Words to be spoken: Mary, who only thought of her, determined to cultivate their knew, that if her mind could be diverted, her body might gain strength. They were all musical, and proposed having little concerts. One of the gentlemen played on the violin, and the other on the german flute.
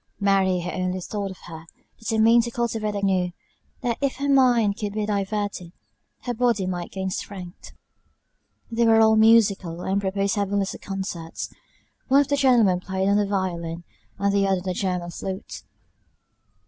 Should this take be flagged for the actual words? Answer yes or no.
no